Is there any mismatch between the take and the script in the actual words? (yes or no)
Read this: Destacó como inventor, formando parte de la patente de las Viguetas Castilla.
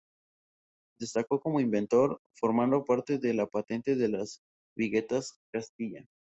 no